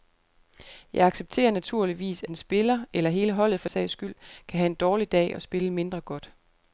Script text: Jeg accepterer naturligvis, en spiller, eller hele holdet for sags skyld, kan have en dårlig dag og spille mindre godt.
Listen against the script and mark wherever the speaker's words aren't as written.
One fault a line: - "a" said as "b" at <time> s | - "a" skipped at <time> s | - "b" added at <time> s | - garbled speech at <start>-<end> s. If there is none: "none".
none